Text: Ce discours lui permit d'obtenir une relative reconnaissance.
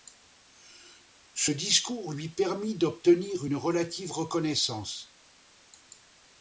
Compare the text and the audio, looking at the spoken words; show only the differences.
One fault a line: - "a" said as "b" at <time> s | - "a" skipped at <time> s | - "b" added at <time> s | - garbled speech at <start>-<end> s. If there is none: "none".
none